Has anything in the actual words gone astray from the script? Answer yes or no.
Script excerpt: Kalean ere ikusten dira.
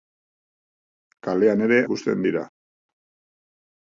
no